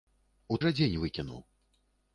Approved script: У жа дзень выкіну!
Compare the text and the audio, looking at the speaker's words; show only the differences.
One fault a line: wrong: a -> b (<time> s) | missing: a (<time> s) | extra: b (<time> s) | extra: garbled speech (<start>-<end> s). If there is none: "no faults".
no faults